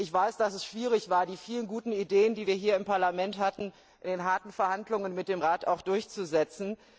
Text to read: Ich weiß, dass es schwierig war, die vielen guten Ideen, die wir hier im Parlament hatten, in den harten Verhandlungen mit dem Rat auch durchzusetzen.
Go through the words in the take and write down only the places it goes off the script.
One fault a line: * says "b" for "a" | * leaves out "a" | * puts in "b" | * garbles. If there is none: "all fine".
all fine